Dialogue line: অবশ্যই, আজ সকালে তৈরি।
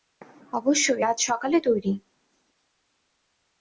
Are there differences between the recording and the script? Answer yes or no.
no